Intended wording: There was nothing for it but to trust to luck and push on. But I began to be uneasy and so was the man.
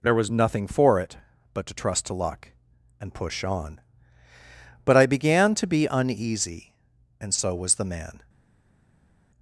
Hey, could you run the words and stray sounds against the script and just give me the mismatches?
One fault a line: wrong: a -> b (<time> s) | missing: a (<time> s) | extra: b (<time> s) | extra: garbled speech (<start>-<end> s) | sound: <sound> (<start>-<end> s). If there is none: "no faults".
no faults